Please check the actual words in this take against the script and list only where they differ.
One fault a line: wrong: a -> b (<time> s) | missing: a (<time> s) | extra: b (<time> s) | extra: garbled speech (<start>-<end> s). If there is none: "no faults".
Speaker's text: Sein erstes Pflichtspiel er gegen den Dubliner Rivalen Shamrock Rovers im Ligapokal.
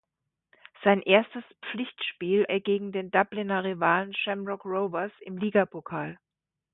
no faults